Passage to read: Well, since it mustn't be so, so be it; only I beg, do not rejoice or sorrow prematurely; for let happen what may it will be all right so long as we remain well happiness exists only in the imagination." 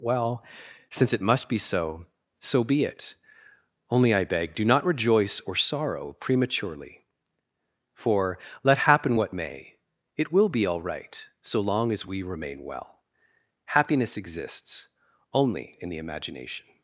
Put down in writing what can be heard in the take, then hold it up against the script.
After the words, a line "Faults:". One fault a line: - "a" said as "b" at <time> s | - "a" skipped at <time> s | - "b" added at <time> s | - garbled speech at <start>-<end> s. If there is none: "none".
Well, since it must be so, so be it; only I beg, do not rejoice or sorrow prematurely; for let happen what may it will be all right so long as we remain well happiness exists only in the imagination."
Faults:
- "mustn't" said as "must" at 1.2 s